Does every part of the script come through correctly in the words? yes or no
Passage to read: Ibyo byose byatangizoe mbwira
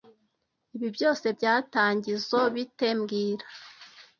no